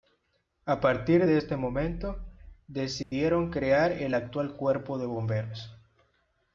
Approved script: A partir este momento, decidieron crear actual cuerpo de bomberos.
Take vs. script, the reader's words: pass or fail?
fail